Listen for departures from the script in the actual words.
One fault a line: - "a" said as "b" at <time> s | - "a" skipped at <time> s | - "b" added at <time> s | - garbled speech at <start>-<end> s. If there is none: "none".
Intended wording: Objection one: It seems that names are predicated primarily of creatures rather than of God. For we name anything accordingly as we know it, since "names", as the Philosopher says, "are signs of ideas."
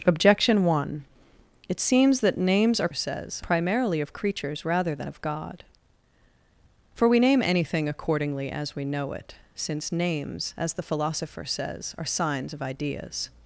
- "predicated" said as "says" at 2.9 s